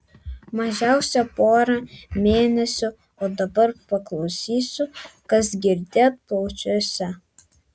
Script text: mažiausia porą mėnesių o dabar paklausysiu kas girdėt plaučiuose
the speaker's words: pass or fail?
pass